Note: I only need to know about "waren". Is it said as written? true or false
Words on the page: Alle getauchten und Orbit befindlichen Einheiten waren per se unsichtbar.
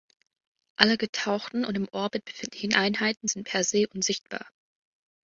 false